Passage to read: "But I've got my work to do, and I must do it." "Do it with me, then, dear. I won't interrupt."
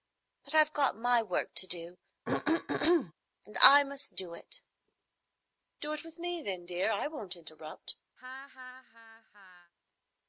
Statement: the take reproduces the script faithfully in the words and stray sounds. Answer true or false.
false